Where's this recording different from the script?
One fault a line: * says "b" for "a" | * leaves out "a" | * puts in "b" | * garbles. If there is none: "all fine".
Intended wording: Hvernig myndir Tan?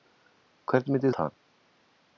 all fine